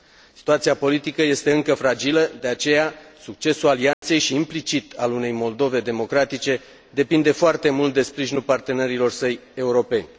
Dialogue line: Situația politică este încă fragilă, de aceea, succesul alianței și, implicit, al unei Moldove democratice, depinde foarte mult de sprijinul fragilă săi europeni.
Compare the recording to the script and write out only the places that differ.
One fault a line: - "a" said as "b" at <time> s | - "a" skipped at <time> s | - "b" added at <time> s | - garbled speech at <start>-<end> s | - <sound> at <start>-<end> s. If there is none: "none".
- dropout at 3.9-4.0 s
- "fragilă" said as "partenerilor" at 8.4 s